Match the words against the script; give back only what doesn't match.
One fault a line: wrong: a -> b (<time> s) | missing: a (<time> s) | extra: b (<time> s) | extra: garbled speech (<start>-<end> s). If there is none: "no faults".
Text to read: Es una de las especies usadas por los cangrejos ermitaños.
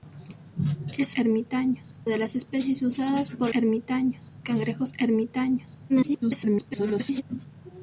wrong: una -> ermitaños (1.1 s)
wrong: los -> ermitaños (3.5 s)
extra: garbled speech (5.9-7.2 s)